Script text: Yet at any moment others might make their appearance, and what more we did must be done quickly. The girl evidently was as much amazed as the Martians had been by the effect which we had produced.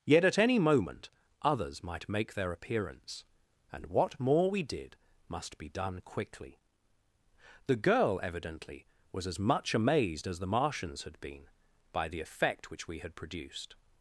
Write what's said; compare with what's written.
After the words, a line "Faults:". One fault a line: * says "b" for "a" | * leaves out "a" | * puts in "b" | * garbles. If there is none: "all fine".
Yet at any moment others might make their appearance, and what more we did must be done quickly. The girl evidently was as much amazed as the Martians had been by the effect which we had produced.
Faults:
all fine